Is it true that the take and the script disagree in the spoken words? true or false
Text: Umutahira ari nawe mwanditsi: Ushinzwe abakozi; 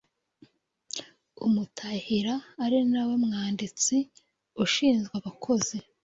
false